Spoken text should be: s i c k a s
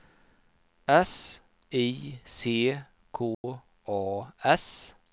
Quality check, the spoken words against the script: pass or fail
pass